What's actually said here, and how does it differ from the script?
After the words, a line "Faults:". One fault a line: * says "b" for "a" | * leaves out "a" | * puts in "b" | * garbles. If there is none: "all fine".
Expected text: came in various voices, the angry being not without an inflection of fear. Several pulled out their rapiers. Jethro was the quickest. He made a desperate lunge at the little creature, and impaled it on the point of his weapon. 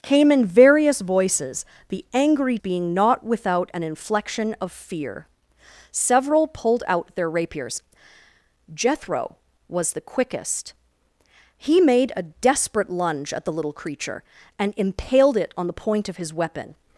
came in various voices, the angry being not without an inflection of fear. Several pulled out their rapiers. Jethro was the quickest. He made a desperate lunge at the little creature, and impaled it on the point of his weapon.
Faults:
all fine